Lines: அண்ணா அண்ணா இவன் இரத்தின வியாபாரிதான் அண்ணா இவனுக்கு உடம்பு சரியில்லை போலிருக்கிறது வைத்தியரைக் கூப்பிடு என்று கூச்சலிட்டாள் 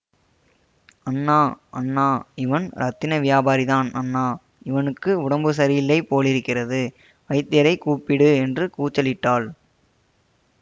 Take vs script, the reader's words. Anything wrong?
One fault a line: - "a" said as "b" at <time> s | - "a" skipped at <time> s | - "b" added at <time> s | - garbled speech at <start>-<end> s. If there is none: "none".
none